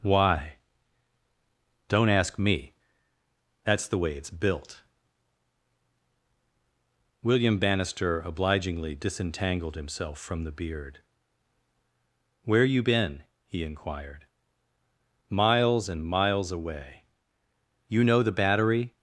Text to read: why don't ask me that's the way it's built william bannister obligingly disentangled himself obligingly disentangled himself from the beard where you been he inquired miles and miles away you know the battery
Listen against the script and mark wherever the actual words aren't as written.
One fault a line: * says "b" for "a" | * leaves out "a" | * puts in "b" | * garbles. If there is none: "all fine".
* leaves out "obligingly disentangled himself"